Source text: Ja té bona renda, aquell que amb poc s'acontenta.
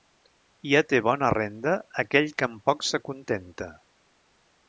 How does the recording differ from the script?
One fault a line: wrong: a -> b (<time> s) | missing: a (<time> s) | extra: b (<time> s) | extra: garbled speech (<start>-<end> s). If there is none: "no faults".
no faults